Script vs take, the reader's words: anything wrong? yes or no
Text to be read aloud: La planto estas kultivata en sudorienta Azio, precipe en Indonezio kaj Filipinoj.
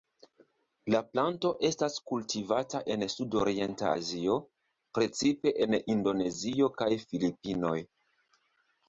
no